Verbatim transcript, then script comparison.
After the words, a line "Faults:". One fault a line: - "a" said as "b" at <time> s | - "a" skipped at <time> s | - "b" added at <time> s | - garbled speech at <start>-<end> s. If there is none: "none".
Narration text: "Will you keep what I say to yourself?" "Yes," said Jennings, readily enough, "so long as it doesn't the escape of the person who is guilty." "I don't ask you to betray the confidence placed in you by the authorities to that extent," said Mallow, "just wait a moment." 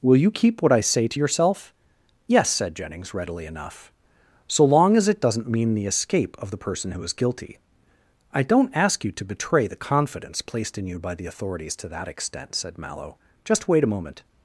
"Will you keep what I say to yourself?" "Yes," said Jennings, readily enough, "so long as it doesn't mean the escape of the person who is guilty." "I don't ask you to betray the confidence placed in you by the authorities to that extent," said Mallow, "just wait a moment."
Faults:
- "mean" added at 5.5 s